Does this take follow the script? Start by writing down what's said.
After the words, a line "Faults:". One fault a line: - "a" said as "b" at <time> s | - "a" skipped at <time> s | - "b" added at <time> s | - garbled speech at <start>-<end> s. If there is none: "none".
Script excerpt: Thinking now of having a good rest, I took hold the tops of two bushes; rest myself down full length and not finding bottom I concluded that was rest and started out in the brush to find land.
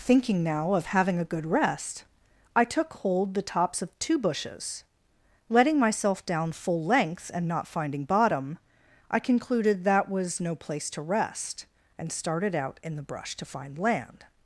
Thinking now of having a good rest, I took hold the tops of two bushes; letting myself down full length and not finding bottom I concluded that was no place to rest and started out in the brush to find land.
Faults:
- "rest" said as "letting" at 5.5 s
- "no place to" added at 10.4 s